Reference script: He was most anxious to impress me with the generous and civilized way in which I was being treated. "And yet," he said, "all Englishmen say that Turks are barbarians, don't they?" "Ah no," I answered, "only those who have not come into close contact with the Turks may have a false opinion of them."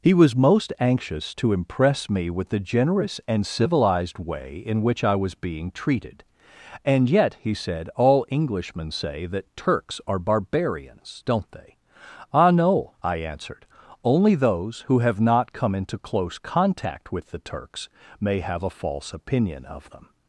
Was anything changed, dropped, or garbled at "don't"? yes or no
no